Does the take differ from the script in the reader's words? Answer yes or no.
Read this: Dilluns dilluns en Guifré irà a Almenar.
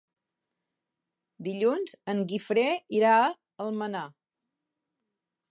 yes